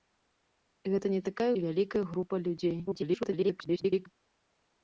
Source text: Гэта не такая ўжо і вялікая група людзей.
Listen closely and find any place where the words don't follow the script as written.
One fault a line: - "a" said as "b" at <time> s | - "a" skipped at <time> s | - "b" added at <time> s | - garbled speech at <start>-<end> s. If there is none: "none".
- "ўжо" skipped at 1.5 s
- garbled speech at 2.9-4.1 s